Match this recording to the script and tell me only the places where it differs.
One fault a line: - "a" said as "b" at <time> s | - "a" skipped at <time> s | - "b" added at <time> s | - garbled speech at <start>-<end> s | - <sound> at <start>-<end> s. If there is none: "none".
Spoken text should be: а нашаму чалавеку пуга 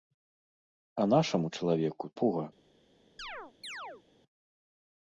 - chirp at 3.2-4.0 s